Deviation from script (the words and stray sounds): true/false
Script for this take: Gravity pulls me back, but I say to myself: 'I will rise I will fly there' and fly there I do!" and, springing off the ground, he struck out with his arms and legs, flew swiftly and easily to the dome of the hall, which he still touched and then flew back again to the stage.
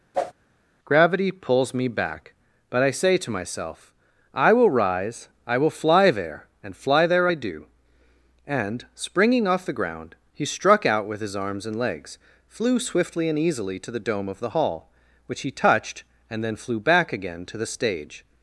true